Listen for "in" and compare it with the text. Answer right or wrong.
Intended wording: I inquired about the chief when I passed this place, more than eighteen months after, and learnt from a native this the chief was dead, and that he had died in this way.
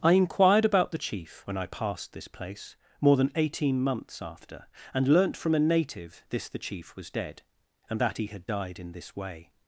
right